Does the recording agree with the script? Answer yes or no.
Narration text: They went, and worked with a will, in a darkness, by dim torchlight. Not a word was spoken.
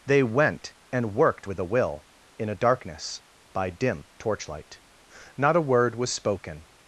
yes